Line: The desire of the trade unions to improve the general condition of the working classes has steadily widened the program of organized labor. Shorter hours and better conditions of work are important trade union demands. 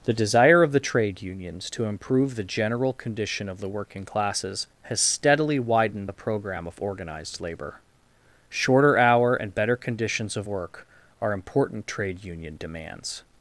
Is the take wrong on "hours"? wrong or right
wrong